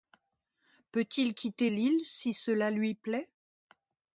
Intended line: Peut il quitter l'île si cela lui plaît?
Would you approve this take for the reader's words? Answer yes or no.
yes